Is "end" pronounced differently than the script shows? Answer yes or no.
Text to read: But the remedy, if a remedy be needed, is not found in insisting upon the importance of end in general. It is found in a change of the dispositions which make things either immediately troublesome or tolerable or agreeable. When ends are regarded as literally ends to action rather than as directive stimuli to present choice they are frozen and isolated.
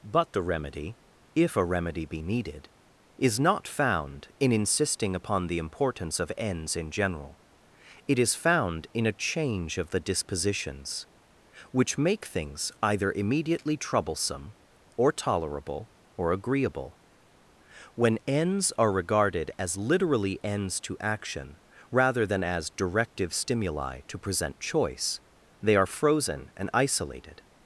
yes